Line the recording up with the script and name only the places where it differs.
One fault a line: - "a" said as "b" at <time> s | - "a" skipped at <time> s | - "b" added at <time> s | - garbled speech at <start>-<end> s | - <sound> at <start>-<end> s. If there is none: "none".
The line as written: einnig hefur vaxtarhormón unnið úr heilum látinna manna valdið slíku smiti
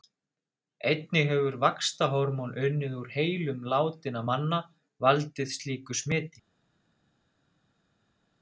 none